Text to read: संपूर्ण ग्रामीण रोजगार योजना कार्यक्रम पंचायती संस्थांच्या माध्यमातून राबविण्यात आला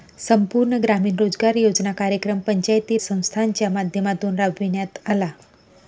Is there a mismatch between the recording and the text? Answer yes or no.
no